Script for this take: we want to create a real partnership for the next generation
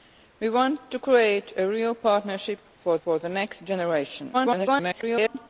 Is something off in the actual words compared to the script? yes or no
yes